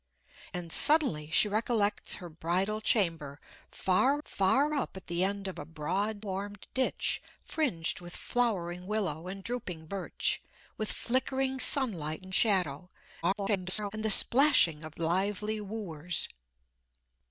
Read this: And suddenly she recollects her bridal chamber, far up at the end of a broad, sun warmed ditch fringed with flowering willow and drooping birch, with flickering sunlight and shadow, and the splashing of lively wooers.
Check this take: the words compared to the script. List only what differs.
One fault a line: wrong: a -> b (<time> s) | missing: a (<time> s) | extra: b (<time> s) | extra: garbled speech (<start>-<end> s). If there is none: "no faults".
extra: far (4.2 s)
missing: sun (6.3 s)
extra: garbled speech (13.2-13.9 s)